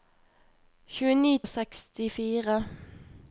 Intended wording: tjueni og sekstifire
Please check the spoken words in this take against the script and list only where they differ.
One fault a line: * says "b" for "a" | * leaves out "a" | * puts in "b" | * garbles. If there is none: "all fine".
all fine